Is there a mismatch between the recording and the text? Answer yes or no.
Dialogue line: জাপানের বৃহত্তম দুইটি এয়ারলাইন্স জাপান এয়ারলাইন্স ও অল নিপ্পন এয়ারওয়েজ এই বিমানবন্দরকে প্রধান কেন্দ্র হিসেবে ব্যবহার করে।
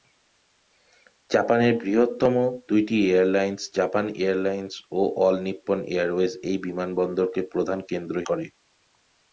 yes